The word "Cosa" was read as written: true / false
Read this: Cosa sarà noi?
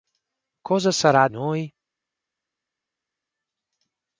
true